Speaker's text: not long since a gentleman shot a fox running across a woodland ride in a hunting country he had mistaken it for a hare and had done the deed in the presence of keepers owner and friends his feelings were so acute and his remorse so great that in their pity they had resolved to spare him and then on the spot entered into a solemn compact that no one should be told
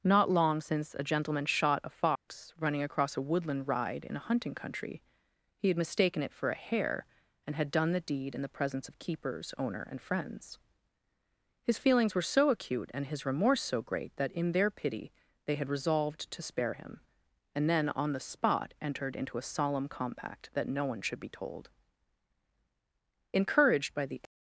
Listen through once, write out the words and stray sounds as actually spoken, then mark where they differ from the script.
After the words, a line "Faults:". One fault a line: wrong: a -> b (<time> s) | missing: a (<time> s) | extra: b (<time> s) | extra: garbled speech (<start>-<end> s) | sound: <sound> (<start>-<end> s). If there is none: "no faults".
not long since a gentleman shot a fox running across a woodland ride in a hunting country he had mistaken it for a hare and had done the deed in the presence of keepers owner and friends his feelings were so acute and his remorse so great that in their pity they had resolved to spare him and then on the spot entered into a solemn compact that no one should be told encouraged by the
Faults:
sound: dropout (2.2-2.3 s)
extra: encouraged by the (23.3 s)